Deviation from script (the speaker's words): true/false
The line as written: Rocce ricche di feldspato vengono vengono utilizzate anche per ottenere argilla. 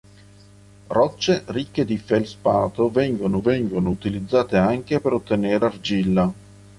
false